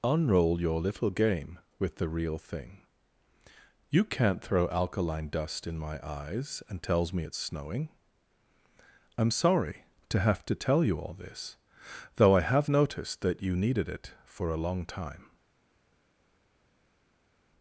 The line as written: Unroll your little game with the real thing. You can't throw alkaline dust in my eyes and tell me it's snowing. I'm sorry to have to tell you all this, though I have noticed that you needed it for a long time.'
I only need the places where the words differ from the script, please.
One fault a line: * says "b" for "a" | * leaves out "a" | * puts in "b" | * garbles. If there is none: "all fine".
* says "tells" for "tell"